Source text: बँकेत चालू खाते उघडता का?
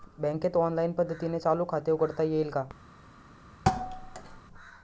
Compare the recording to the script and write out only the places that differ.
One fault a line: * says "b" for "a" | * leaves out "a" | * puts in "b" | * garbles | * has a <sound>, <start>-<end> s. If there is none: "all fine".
* puts in "ऑनलाईन पद्धतीने"
* puts in "येईल"
* has a thud, 3.7-4.4 s